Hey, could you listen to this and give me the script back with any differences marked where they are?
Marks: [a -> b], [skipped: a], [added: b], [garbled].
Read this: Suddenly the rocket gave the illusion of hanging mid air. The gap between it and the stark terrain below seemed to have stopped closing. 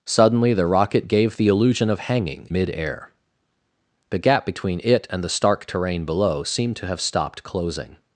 Suddenly the rocket gave the illusion of hanging mid air. The gap between it and the stark terrain below seemed to have stopped closing.